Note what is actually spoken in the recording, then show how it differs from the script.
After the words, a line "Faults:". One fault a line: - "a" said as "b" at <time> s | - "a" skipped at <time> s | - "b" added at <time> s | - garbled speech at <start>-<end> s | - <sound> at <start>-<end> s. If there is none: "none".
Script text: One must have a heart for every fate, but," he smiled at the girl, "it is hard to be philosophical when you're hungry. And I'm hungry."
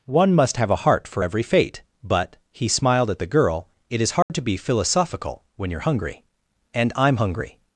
One must have a heart for every fate, but," he smiled at the girl, "it is hard to be philosophical when you're hungry. And I'm hungry."
Faults:
- dropout at 4.2-4.3 s